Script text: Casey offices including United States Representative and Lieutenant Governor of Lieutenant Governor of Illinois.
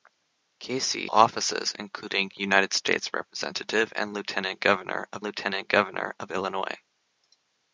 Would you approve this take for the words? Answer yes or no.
yes